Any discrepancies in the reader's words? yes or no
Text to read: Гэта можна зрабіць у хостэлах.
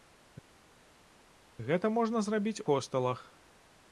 yes